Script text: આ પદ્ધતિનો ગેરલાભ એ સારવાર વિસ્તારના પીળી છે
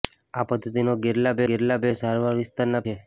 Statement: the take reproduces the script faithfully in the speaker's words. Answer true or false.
false